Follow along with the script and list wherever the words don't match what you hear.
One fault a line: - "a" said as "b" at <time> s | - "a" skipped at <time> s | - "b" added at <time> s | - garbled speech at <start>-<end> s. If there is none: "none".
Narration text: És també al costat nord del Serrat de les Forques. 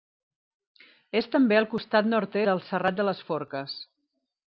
none